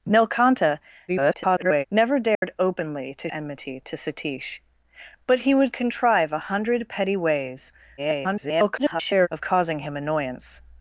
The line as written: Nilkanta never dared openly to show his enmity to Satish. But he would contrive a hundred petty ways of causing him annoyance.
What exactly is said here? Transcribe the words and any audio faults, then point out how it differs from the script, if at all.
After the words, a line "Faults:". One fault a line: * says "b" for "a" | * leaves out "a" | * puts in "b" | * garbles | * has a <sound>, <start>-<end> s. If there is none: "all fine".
Nilkanta [garbled] never dared openly to enmity to Satish. But he would contrive a hundred petty ways [garbled] of causing him annoyance.
Faults:
* garbles
* has a dropout, 2.3-2.4 s
* leaves out "show his"
* garbles